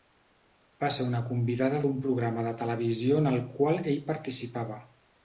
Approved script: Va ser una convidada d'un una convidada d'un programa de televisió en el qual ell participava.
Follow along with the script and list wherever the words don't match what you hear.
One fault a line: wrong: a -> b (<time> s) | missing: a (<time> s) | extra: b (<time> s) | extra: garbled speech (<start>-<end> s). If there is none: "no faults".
missing: una convidada d'un (1.9 s)